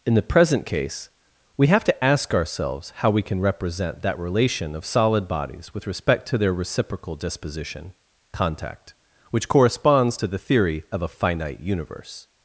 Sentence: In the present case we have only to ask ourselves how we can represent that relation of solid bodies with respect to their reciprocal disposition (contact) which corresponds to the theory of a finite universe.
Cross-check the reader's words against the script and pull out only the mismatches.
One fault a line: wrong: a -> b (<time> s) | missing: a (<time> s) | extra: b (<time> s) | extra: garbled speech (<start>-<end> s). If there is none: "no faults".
missing: only (1.8 s)